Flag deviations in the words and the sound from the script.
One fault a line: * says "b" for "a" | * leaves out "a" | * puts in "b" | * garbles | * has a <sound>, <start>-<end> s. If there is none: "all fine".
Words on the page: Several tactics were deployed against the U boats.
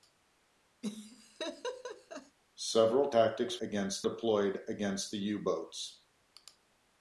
* has a laugh, 0.8-2.4 s
* says "against" for "were"